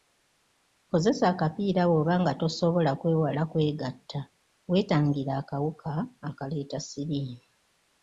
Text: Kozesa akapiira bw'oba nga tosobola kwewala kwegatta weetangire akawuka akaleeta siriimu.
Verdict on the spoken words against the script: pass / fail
pass